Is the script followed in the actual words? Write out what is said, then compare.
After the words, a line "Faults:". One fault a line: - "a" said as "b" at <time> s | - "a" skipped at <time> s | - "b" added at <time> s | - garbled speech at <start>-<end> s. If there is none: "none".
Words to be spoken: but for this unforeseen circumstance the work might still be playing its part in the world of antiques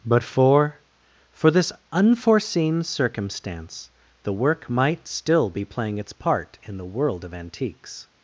but for for this unforeseen circumstance the work might still be playing its part in the world of antiques
Faults:
- "for" added at 1.3 s